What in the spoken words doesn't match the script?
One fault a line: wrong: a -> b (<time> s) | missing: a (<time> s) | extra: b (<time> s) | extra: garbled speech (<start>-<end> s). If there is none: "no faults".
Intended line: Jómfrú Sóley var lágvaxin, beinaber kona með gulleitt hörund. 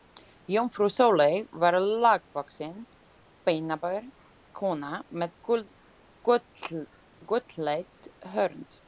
no faults